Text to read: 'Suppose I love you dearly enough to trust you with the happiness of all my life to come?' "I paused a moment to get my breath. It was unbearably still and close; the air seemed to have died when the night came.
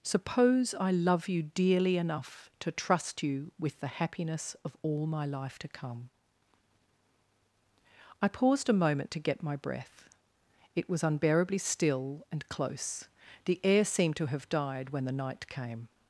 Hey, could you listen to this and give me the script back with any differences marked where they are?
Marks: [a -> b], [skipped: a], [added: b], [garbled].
'Suppose I love you dearly enough to trust you with the happiness of all my life to come?' "I paused a moment to get my breath. It was unbearably still and close; the air seemed to have died when the night came.